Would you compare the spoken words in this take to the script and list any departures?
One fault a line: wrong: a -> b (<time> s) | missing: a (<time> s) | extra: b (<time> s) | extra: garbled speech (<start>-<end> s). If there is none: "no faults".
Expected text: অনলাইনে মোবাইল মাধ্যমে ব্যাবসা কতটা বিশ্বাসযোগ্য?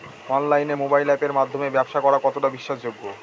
extra: আপের (1.1 s)
extra: করা (2.0 s)